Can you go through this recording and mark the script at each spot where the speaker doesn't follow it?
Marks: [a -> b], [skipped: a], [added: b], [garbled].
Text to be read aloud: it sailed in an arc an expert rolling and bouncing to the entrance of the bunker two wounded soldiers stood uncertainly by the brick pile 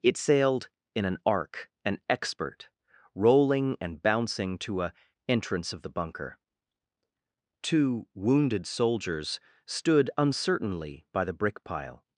it sailed in an arc an expert rolling and bouncing to [the -> a] entrance of the bunker two wounded soldiers stood uncertainly by the brick pile